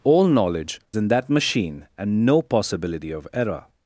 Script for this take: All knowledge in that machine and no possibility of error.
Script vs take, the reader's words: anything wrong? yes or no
no